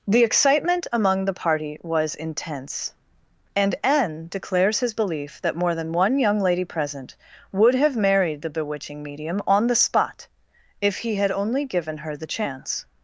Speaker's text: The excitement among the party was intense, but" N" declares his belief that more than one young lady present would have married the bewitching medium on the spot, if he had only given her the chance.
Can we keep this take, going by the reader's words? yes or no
no